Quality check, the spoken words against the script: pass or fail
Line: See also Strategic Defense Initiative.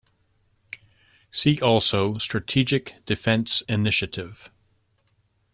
pass